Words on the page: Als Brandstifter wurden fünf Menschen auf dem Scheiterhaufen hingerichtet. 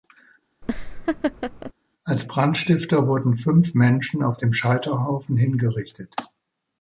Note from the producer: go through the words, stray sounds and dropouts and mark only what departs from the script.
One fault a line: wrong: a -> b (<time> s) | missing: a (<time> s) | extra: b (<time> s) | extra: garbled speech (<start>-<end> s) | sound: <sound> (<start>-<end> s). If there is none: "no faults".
sound: laugh (0.6-1.7 s)